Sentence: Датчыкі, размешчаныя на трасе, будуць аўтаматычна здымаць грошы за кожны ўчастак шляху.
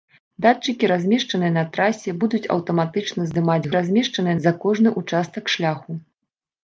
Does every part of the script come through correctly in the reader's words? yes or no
no